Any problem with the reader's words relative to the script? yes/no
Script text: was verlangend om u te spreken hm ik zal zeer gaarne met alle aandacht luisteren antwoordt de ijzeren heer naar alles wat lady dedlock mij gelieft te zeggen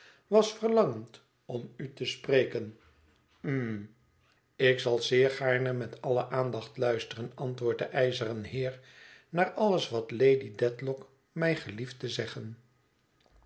no